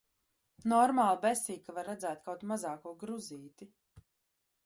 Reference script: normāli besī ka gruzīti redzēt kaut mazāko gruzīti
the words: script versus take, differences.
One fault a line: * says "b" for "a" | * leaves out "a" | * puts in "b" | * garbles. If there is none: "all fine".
* says "var" for "gruzīti"